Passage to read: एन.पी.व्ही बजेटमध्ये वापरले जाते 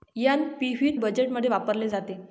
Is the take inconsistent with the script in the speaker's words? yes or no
no